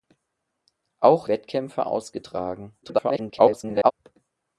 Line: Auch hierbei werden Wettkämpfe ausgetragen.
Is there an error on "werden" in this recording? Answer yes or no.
yes